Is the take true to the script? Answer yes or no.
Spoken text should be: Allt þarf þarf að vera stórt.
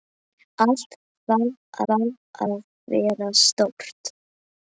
yes